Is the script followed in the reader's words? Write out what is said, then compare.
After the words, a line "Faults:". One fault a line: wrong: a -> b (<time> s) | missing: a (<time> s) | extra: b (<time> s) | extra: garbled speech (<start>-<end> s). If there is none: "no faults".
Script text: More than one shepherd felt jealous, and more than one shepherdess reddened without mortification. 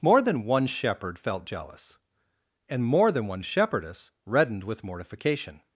More than one shepherd felt jealous, and more than one shepherdess reddened with mortification.
Faults:
wrong: without -> with (4.6 s)